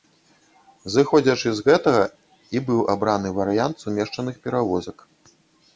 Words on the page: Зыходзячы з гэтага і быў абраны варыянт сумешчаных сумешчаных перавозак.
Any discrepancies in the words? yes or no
yes